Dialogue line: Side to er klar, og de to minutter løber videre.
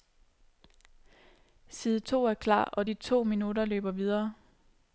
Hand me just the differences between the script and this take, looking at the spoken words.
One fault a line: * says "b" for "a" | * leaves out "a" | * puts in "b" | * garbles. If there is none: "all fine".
all fine